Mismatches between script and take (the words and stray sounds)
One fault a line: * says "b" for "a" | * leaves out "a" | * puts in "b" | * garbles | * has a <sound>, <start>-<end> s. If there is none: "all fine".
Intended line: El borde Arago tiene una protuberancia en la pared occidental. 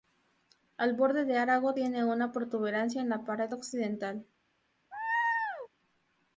* puts in "de"
* has a laugh, 4.9-5.7 s